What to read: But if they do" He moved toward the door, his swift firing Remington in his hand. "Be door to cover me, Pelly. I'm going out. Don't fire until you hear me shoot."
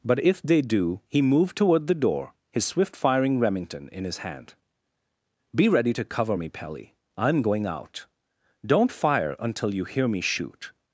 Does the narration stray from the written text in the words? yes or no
yes